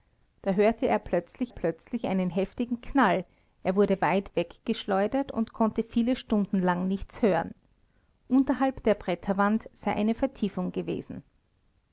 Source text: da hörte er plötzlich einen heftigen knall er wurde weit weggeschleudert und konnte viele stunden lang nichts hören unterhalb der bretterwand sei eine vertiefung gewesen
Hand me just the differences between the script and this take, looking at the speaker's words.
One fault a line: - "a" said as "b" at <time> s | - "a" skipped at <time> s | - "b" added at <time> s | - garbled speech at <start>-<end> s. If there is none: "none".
- "plötzlich" added at 1.5 s